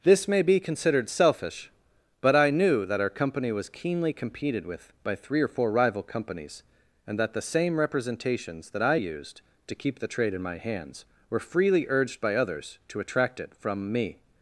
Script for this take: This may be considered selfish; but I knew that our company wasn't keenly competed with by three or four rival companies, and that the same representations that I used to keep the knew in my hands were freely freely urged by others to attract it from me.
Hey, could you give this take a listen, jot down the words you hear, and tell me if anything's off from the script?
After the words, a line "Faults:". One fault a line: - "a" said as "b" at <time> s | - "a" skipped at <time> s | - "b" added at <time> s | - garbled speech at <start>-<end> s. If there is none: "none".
This may be considered selfish; but I knew that our company was keenly competed with by three or four rival companies, and that the same representations that I used to keep the trade in my hands were freely urged by others to attract it from me.
Faults:
- "wasn't" said as "was" at 3.5 s
- "knew" said as "trade" at 10.1 s
- "freely" skipped at 11.9 s